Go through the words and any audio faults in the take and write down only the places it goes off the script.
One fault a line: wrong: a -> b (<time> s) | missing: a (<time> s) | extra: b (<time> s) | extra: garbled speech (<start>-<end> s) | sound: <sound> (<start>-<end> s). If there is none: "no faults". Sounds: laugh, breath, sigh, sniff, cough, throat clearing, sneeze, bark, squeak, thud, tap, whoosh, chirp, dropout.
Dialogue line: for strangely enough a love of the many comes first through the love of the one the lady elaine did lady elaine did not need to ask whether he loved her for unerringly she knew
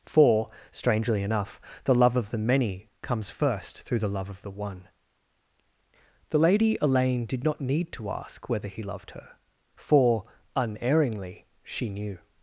wrong: a -> the (1.8 s)
missing: lady elaine did (7.4 s)